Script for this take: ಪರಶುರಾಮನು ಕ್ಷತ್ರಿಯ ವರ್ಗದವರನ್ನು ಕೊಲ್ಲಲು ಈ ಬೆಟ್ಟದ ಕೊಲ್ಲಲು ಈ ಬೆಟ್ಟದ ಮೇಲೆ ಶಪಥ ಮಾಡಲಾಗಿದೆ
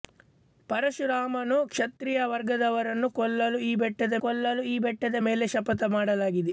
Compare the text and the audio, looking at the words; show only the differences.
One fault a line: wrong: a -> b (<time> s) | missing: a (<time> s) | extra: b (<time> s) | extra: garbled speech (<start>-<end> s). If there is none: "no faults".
no faults